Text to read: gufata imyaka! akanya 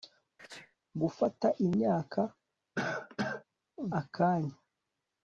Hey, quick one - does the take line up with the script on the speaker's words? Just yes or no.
yes